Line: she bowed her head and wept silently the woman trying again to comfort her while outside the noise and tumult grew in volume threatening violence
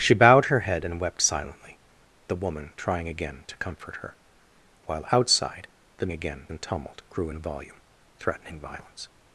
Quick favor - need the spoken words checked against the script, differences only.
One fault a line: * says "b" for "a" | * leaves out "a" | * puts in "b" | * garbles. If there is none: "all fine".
* says "again" for "noise"